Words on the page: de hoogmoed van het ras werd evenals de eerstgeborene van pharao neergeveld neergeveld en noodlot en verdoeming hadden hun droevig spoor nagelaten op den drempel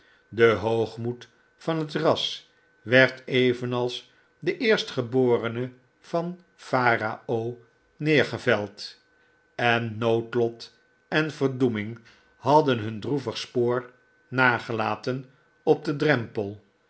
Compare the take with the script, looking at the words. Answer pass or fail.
fail